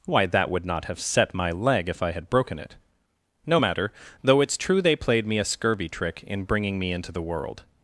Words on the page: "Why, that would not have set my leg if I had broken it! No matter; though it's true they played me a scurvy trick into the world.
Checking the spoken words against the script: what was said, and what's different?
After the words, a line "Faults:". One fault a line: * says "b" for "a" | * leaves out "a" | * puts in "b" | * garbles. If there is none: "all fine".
"Why, that would not have set my leg if I had broken it! No matter; though it's true they played me a scurvy trick in bringing me into the world.
Faults:
* puts in "in bringing me"